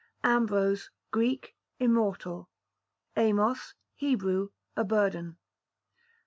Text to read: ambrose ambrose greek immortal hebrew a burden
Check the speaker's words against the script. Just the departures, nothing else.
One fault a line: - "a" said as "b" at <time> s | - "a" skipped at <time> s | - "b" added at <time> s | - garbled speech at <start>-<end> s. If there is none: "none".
- "ambrose" skipped at 0.9 s
- "amos" added at 3.2 s